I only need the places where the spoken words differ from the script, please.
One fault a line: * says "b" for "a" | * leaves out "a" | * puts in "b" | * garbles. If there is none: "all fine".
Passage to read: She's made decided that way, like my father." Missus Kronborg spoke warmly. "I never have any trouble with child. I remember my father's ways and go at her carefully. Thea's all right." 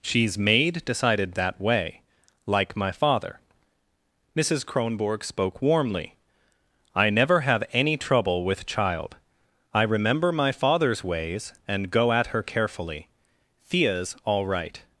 all fine